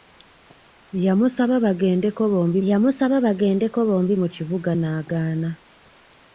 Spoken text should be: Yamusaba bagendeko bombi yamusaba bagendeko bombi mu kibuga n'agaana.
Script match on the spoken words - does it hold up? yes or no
yes